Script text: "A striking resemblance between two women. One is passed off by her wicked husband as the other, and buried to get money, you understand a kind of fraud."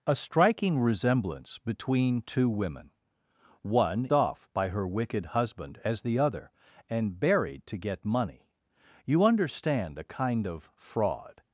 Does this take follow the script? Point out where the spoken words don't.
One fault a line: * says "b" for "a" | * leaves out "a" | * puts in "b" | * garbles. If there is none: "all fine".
* leaves out "is passed"